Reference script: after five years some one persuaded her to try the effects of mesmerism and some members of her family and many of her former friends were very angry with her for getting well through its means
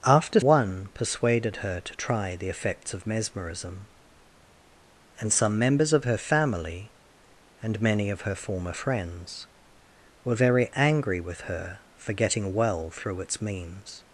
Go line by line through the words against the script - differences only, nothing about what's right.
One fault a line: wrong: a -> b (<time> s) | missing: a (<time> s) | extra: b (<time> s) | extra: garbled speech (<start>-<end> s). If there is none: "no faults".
missing: five years some (0.4 s)